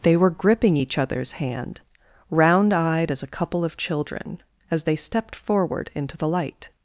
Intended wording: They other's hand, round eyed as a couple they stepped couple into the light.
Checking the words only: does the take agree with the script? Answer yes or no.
no